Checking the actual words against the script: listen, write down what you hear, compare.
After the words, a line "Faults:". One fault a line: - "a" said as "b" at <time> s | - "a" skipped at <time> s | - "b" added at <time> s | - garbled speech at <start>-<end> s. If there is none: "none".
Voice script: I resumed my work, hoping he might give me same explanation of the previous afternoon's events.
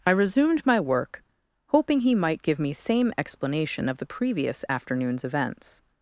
I resumed my work, hoping he might give me same explanation of the previous afternoon's events.
Faults:
none